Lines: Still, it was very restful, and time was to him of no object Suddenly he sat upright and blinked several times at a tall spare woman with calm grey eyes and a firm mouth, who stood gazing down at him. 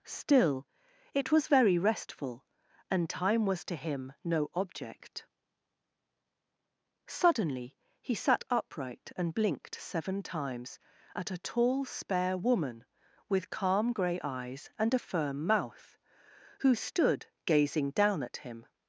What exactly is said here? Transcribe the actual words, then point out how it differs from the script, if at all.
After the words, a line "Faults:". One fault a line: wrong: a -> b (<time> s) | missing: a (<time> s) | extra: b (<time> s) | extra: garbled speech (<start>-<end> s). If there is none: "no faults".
Still, it was very restful, and time was to him no object Suddenly he sat upright and blinked seven times at a tall spare woman with calm grey eyes and a firm mouth, who stood gazing down at him.
Faults:
missing: of (4.1 s)
wrong: several -> seven (9.8 s)